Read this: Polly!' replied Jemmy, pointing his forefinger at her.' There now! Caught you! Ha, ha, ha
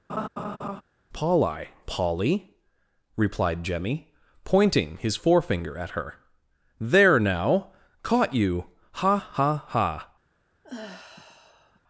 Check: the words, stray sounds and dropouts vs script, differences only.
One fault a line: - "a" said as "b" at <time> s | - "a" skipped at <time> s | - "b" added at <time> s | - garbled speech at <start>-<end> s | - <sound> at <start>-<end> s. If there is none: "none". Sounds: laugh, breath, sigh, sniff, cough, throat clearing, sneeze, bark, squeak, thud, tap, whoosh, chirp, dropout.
- laugh at 0.1-0.8 s
- "polly" added at 1.9 s
- sigh at 10.6-11.8 s